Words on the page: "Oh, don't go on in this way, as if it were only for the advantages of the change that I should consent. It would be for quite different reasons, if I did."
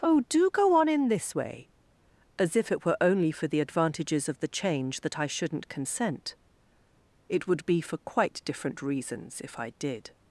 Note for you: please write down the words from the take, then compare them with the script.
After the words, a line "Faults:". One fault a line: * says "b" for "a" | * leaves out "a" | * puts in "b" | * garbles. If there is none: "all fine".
"Oh, do go on in this way, as if it were only for the advantages of the change that I shouldn't consent. It would be for quite different reasons, if I did."
Faults:
* says "do" for "don't"
* says "shouldn't" for "should"